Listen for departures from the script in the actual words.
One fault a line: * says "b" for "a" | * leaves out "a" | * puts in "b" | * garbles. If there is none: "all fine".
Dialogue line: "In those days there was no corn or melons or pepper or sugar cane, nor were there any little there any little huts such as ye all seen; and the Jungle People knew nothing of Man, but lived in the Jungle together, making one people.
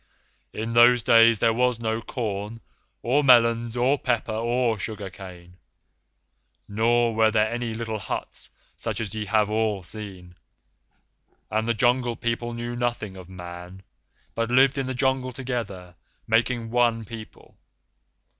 * leaves out "there any little"
* puts in "have"